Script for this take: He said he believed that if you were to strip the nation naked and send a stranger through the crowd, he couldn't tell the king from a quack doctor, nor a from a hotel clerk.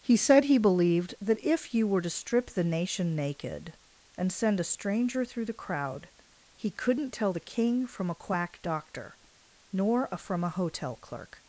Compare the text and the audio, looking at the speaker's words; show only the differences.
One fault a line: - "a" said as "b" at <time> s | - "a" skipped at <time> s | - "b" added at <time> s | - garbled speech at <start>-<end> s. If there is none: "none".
none